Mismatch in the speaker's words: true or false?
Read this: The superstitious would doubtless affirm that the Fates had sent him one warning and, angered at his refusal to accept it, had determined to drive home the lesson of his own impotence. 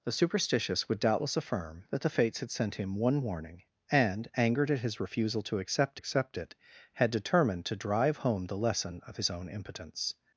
true